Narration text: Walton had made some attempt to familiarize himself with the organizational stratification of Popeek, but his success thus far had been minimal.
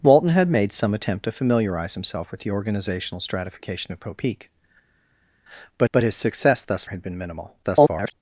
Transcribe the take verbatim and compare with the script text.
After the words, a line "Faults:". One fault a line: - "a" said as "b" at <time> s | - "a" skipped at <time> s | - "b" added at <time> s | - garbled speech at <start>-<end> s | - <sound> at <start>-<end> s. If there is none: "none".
Walton had made some attempt to familiarize himself with the organizational stratification of Popeek, but but his success thus had been minimal. [garbled]
Faults:
- "but" added at 5.9 s
- "far" skipped at 6.8 s
- garbled speech at 7.6-8.1 s